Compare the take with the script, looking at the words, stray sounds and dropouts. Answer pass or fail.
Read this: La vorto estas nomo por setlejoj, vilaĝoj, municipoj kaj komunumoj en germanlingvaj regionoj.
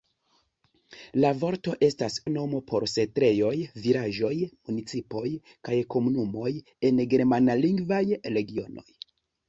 pass